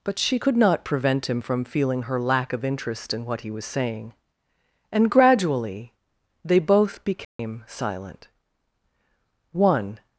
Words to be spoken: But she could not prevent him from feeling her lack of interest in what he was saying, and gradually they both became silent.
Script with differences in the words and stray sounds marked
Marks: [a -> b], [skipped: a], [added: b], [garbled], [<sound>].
But she could not prevent him from feeling her lack of interest in what he was saying, and gradually they both became [dropout] silent. [added: One]